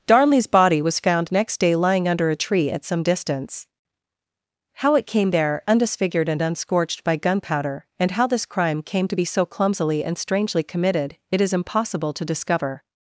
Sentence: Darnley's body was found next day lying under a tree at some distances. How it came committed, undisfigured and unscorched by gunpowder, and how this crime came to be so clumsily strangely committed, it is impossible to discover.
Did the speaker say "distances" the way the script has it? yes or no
no